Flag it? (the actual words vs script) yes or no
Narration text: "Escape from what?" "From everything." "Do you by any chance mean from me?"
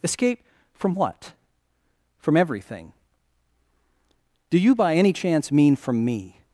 no